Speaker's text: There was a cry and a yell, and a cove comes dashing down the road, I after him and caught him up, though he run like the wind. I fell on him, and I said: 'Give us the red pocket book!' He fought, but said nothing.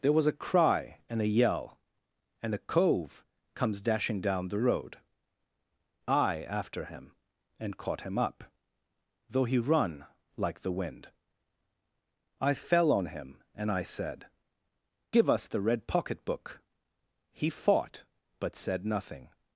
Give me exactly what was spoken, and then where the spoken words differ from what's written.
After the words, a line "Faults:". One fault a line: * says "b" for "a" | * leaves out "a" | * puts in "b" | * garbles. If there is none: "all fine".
There was a cry and a yell, and a cove comes dashing down the road, I after him and caught him up, though he run like the wind. I fell on him, and I said: 'Give us the red pocket book!' He fought, but said nothing.
Faults:
all fine